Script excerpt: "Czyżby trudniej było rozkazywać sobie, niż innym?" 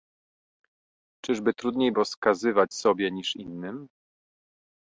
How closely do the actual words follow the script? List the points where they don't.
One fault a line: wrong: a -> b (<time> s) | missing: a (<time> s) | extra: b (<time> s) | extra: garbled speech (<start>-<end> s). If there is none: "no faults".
missing: było (1.9 s)